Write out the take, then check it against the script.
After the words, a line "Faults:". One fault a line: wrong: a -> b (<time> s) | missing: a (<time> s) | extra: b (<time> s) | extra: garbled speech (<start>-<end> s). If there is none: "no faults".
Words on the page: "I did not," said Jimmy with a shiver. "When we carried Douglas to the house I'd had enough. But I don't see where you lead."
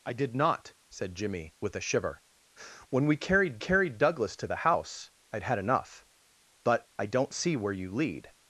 "I did not," said Jimmy with a shiver. "When we carried carried Douglas to the house I'd had enough. But I don't see where you lead."
Faults:
extra: carried (3.6 s)